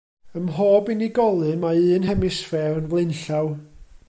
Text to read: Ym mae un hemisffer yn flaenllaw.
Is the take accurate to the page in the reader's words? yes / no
no